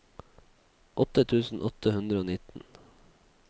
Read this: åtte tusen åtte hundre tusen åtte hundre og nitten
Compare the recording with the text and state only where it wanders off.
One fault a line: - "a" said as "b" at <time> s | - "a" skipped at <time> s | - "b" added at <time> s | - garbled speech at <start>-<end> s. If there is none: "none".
- "tusen åtte hundre" skipped at 2.2 s